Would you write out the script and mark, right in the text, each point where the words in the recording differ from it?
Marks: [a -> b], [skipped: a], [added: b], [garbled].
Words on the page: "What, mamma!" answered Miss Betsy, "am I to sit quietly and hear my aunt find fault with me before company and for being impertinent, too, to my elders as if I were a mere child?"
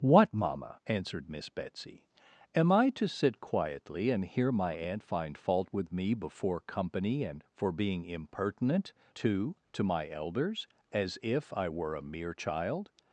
"What, mamma!" answered Miss Betsy, "am I to sit quietly and hear my aunt find fault with me before company and for being impertinent, too, to my elders as if I were a mere child?"